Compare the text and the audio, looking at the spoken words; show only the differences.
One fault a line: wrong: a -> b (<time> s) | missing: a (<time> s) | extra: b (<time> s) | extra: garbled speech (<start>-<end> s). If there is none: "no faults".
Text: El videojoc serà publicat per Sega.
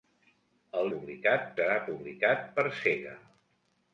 wrong: videojoc -> publicat (0.9 s)